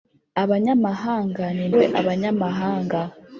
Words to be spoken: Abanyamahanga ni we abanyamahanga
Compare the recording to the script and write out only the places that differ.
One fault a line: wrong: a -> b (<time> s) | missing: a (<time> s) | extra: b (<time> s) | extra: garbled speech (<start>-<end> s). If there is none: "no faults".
no faults